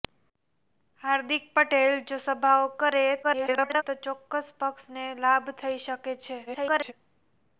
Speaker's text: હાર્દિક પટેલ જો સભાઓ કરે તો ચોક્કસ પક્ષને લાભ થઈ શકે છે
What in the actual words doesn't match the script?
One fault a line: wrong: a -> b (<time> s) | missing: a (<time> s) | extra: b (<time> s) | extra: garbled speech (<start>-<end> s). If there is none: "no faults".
extra: garbled speech (3.2-3.8 s)
extra: garbled speech (6.5-6.9 s)